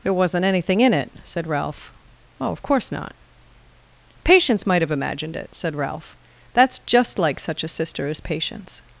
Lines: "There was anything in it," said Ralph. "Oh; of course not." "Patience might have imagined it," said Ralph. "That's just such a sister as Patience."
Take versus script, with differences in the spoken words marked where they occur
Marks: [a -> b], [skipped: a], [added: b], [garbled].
"There [was -> wasn't] anything in it," said Ralph. "Oh; of course not." "Patience might have imagined it," said Ralph. "That's just [added: like] such a sister as Patience."